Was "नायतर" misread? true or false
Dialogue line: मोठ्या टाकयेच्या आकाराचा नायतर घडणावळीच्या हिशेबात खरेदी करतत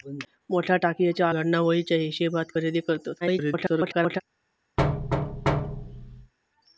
true